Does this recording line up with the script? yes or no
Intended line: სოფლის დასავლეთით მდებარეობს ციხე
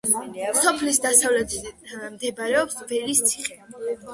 no